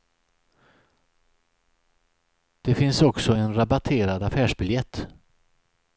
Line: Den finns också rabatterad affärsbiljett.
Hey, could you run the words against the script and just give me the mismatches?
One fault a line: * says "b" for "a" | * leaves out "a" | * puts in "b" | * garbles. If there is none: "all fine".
* says "Det" for "Den"
* puts in "en"